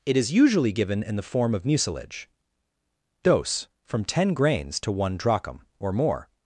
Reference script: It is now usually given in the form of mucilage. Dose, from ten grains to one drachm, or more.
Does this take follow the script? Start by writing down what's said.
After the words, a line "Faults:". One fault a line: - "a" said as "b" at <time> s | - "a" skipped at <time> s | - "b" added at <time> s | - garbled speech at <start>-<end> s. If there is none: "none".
It is usually given in the form of mucilage. Dose, from ten grains to one drachm, or more.
Faults:
- "now" skipped at 0.3 s